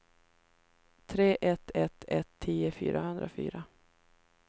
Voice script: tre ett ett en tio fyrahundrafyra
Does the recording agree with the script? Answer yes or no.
no